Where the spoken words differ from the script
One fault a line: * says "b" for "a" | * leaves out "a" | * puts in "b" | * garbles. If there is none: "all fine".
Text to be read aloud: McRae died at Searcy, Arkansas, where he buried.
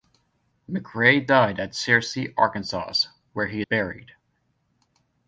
all fine